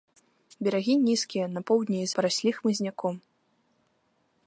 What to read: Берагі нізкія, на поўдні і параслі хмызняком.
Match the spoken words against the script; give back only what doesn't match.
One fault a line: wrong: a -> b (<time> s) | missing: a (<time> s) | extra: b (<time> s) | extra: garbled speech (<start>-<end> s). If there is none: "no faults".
no faults